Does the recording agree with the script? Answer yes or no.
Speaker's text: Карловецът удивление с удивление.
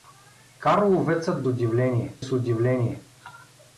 yes